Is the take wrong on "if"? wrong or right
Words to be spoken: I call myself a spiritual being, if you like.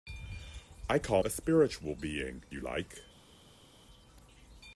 wrong